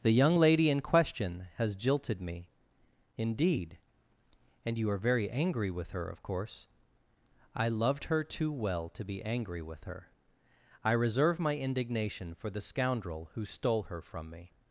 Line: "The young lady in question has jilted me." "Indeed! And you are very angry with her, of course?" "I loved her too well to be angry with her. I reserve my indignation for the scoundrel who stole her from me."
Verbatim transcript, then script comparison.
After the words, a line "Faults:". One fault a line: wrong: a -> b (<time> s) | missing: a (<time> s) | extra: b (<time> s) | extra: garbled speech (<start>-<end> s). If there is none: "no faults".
"The young lady in question has jilted me." "Indeed! And you are very angry with her, of course?" "I loved her too well to be angry with her. I reserve my indignation for the scoundrel who stole her from me."
Faults:
no faults